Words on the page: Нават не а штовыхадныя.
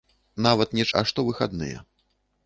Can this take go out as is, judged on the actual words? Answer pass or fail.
pass